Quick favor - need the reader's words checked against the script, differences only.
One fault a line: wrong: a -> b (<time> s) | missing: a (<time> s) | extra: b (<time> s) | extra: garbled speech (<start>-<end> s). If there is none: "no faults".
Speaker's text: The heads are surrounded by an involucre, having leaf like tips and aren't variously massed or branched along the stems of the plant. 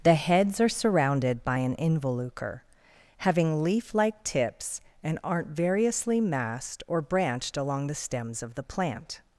no faults